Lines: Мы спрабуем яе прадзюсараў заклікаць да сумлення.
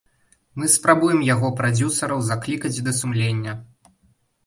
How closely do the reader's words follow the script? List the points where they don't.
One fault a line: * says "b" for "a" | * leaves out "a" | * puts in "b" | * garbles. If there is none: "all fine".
* says "яго" for "яе"